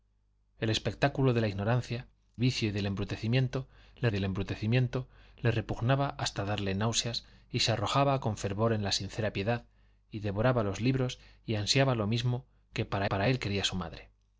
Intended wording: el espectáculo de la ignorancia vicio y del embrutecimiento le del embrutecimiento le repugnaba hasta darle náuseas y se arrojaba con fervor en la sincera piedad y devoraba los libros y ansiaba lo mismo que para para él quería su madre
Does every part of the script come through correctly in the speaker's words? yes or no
yes